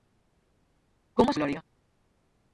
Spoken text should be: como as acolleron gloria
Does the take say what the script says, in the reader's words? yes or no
no